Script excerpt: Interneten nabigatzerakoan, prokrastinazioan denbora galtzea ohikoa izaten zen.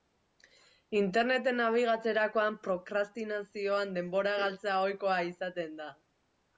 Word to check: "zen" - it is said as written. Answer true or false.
false